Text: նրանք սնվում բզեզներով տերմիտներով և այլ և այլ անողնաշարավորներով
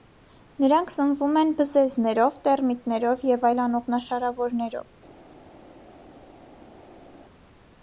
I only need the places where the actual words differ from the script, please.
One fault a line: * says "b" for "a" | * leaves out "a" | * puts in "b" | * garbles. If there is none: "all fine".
* puts in "են"
* leaves out "և այլ"